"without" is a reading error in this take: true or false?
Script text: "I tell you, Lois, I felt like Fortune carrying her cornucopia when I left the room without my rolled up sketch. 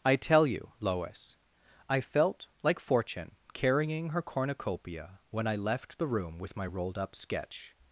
true